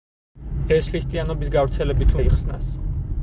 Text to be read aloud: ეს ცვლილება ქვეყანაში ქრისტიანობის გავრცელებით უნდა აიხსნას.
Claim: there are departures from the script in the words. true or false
true